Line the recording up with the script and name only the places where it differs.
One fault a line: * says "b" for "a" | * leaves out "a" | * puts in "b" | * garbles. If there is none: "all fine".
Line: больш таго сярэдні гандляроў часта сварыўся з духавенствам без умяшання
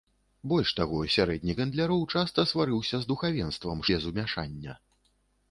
all fine